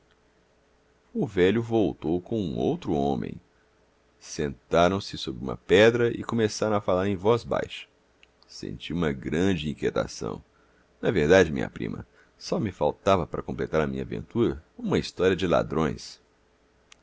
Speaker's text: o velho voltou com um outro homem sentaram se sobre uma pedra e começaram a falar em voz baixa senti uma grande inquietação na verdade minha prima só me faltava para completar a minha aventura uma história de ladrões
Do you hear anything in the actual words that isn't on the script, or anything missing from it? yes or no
no